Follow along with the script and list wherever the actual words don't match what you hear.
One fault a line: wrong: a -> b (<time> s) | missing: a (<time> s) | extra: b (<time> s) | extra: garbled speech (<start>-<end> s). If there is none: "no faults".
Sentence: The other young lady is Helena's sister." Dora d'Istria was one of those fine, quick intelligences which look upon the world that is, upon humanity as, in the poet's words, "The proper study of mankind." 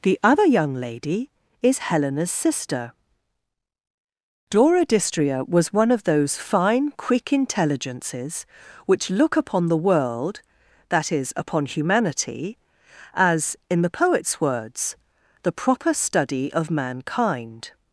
no faults